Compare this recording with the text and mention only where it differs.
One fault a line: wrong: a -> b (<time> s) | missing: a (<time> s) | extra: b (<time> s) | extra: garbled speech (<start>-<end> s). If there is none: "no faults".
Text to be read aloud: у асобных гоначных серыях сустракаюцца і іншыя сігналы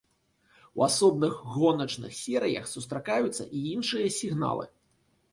no faults